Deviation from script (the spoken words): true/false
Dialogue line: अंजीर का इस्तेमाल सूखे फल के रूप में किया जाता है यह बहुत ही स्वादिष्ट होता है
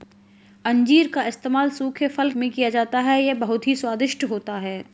true